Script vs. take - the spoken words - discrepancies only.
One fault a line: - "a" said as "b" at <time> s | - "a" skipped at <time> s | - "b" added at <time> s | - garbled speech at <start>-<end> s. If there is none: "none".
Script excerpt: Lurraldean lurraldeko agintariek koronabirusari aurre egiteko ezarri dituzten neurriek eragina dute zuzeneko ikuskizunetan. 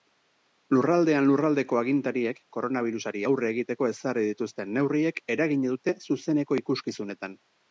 none